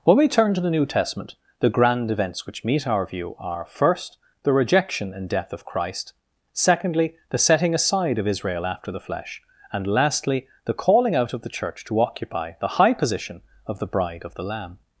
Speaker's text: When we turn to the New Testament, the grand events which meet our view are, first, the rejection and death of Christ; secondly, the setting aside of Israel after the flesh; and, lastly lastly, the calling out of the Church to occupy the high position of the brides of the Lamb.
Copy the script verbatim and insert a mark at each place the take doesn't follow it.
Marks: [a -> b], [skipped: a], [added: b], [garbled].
When we turn to the New Testament, the grand events which meet our view are, first, the rejection and death of Christ; secondly, the setting aside of Israel after the flesh; and, lastly [skipped: lastly,] the calling out of the Church to occupy the high position of the [brides -> bride] of the Lamb.